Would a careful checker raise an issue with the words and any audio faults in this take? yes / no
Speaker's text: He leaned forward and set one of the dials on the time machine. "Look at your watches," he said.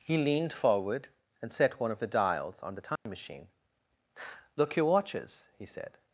yes